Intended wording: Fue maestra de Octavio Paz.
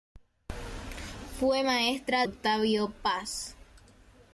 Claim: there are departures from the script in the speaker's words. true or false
true